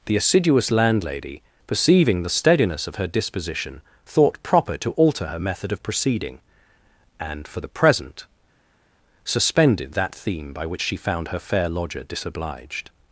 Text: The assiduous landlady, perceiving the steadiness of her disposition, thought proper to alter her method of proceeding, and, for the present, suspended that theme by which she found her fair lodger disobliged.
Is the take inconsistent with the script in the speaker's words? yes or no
no